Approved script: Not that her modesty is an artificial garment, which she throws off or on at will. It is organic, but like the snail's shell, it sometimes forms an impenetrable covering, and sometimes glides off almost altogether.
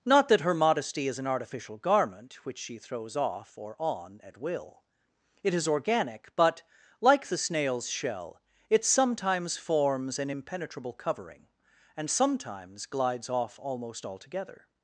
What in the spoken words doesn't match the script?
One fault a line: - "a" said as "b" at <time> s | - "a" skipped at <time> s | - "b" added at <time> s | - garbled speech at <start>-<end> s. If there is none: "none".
none